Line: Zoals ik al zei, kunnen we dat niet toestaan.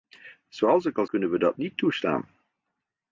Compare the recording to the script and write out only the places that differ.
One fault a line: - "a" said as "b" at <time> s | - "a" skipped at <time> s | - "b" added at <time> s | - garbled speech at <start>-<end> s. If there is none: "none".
- "zei" skipped at 1.1 s